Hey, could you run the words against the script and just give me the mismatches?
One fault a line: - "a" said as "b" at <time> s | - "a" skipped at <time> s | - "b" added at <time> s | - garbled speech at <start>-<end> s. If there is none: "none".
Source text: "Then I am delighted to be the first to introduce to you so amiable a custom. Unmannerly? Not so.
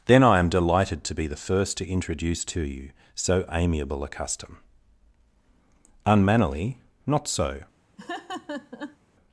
none